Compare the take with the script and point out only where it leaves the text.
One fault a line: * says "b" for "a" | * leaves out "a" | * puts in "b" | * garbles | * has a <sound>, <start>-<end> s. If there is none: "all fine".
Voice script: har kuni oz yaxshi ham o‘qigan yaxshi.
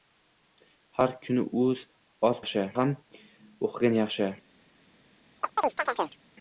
* has a chirp, 5.4-6.2 s